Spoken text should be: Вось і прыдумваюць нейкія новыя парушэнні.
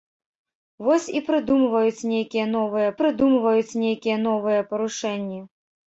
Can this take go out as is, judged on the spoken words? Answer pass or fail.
fail